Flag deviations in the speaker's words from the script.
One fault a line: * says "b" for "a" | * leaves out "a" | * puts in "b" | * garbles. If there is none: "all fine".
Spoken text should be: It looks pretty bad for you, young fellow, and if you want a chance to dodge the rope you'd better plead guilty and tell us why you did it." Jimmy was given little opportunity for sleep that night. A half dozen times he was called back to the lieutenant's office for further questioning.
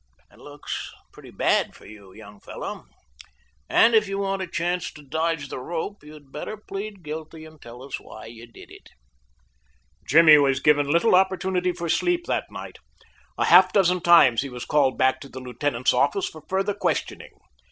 all fine